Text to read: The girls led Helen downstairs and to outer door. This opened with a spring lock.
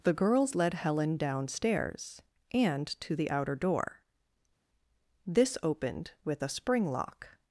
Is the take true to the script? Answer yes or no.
no